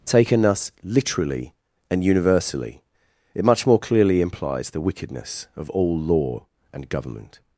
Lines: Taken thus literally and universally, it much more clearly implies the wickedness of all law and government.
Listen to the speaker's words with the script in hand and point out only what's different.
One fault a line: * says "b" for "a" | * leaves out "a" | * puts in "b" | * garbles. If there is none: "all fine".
all fine